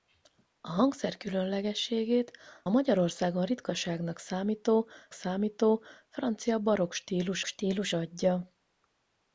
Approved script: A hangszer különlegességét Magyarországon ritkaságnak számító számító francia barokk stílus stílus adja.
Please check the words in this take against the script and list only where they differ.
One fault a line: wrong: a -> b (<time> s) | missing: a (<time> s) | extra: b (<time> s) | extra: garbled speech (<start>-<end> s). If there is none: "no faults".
no faults